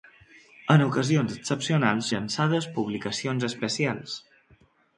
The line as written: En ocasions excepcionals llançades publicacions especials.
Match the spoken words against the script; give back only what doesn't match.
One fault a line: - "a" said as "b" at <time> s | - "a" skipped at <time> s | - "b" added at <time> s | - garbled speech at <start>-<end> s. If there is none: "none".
none